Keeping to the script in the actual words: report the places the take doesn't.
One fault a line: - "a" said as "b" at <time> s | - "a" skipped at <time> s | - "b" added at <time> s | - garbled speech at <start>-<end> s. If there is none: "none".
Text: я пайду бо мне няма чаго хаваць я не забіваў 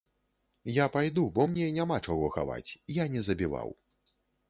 none